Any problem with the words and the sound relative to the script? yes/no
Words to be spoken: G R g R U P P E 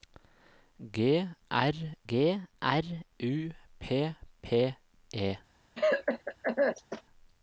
yes